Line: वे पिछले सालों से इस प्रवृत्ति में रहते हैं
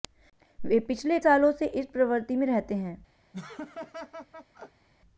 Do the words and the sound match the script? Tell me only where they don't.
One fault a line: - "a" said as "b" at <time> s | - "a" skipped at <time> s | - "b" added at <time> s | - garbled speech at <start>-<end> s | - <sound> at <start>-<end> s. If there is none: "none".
- laugh at 3.3-4.9 s